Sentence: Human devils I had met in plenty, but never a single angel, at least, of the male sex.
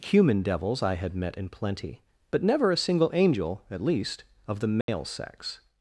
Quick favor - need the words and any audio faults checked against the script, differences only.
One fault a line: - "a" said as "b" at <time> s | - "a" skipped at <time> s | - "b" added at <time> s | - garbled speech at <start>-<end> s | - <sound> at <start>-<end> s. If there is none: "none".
- dropout at 4.8-4.9 s